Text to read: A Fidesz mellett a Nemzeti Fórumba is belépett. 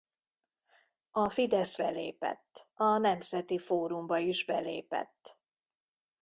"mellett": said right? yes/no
no